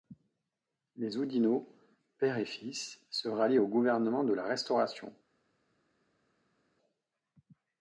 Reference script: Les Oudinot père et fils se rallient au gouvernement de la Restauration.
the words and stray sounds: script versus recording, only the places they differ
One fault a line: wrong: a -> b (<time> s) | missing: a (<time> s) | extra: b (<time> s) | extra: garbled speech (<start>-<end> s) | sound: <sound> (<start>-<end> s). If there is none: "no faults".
no faults